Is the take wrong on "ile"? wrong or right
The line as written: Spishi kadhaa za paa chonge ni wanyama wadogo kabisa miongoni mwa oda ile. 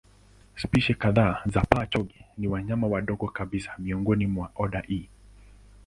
wrong